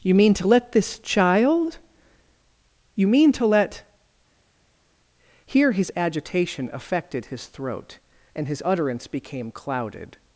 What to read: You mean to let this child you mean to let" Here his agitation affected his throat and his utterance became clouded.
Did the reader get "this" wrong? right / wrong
right